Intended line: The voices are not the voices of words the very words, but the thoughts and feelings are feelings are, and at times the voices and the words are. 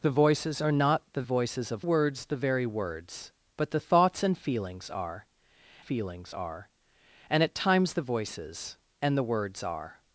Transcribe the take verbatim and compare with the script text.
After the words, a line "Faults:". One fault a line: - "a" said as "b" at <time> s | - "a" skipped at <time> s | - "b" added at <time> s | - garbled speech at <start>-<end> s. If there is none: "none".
The voices are not the voices of words the very words, but the thoughts and feelings are feelings are, and at times the voices and the words are.
Faults:
none